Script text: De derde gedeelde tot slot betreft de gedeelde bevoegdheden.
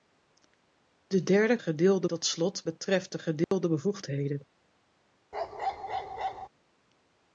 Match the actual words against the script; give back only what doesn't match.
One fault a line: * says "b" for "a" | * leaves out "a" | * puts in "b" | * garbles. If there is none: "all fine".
all fine